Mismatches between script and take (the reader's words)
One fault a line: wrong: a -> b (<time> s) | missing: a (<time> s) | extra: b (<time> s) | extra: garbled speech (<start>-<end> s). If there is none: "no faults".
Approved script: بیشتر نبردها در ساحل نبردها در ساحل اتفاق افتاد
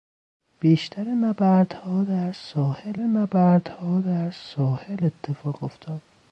no faults